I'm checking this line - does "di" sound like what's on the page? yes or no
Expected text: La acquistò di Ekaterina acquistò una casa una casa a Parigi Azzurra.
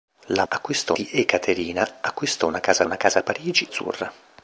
yes